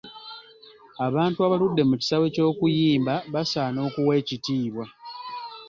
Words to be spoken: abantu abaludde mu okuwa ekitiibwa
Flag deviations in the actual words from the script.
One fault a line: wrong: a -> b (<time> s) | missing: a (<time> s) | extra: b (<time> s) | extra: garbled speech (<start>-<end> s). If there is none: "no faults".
extra: kisaawe ky'okuyimba basaana (2.0 s)